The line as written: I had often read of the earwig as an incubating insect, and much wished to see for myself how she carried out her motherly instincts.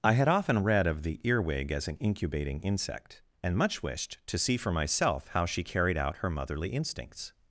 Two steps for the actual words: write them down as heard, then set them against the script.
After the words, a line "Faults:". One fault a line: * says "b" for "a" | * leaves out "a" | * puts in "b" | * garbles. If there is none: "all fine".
I had often read of the earwig as an incubating insect, and much wished to see for myself how she carried out her motherly instincts.
Faults:
all fine